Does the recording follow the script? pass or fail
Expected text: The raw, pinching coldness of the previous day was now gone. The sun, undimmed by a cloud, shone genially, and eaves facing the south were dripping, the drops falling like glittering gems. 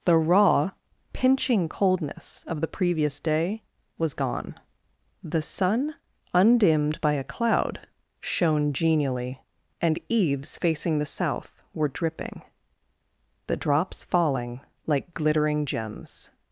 fail